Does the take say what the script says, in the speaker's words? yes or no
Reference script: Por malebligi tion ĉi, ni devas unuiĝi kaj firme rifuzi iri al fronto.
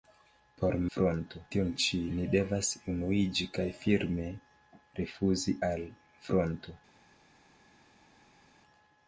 no